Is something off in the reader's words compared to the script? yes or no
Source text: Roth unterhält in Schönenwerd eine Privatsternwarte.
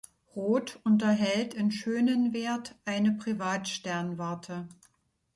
no